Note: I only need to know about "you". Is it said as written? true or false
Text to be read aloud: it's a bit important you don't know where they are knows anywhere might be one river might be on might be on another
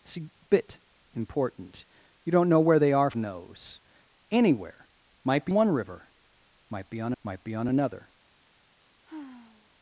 true